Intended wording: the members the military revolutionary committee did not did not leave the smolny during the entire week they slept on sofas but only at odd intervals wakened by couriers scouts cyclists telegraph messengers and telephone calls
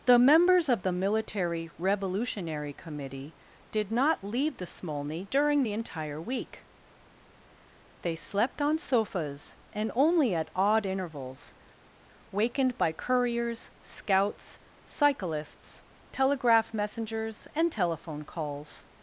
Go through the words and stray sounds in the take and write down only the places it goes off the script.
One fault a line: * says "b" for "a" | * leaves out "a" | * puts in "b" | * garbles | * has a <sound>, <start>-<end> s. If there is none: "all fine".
* puts in "of"
* leaves out "did not"
* says "and" for "but"